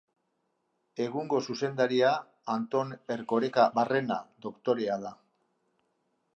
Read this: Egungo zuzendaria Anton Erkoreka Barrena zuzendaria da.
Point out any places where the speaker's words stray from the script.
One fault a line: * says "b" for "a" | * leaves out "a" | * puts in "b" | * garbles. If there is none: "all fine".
* says "doktorea" for "zuzendaria"